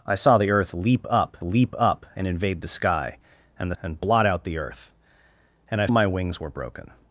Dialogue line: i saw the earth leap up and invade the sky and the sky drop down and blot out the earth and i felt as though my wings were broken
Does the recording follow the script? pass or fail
fail